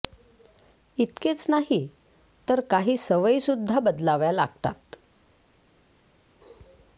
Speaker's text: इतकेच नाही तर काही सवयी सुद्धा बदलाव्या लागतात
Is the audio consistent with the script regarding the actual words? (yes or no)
yes